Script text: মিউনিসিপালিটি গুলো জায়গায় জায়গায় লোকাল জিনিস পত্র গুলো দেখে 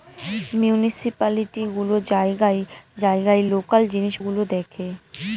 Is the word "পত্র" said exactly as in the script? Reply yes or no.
no